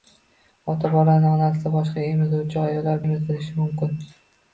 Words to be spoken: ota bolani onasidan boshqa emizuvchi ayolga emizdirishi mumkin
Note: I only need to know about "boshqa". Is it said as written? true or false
true